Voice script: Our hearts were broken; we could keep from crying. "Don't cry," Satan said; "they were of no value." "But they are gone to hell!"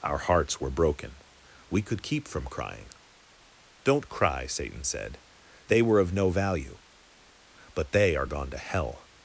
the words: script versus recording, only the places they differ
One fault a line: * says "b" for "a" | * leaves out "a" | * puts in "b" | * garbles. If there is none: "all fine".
all fine